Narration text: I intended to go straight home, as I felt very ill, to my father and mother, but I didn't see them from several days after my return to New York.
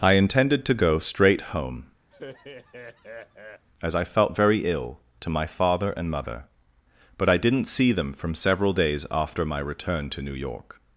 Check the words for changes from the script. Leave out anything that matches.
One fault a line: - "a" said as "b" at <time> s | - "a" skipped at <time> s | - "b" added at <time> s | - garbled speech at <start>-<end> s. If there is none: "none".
none